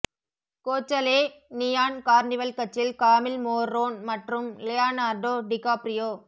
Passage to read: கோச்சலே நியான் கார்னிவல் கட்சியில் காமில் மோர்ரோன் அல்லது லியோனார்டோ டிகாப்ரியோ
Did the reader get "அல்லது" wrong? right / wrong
wrong